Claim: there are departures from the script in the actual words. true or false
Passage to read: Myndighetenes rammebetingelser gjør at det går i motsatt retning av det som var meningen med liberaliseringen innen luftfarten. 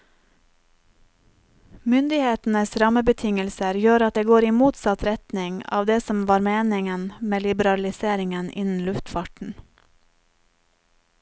false